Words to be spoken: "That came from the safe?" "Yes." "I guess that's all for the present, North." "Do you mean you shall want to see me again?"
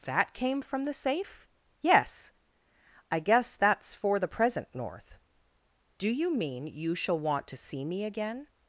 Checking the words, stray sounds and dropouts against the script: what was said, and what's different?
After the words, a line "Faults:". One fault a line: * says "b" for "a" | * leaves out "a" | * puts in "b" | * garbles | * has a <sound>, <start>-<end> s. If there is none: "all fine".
"That came from the safe?" "Yes." "I guess that's for the present, North." "Do you mean you shall want to see me again?"
Faults:
* leaves out "all"